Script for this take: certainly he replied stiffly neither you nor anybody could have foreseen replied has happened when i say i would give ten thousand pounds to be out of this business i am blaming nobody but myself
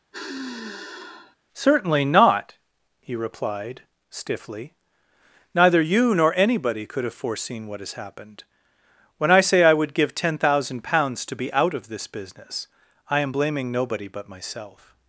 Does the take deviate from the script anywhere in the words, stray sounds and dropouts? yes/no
yes